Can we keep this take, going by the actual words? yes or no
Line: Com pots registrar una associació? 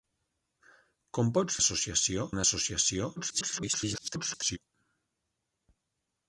no